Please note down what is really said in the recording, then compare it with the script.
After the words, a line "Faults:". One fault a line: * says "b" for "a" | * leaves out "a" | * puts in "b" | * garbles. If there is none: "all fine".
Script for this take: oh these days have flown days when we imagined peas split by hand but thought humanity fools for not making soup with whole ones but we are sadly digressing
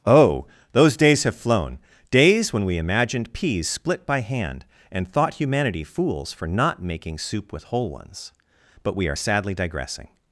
oh those days have flown days when we imagined peas split by hand and thought humanity fools for not making soup with whole ones but we are sadly digressing
Faults:
* says "those" for "these"
* says "and" for "but"